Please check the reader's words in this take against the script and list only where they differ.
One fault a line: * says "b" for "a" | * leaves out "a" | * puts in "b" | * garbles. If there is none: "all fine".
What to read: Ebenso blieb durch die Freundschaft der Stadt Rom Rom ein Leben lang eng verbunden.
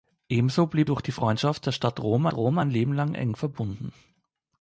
all fine